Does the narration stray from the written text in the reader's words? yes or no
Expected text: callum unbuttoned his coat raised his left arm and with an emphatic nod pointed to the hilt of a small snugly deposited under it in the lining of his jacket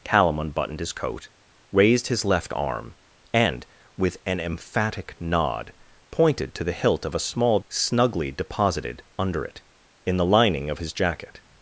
no